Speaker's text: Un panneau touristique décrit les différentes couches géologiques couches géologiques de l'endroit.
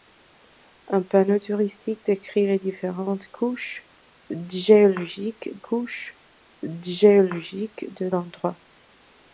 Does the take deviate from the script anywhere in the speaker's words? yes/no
no